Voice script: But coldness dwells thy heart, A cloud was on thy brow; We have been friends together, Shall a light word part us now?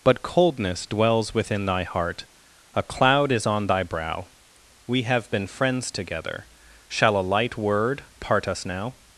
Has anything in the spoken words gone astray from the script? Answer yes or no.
yes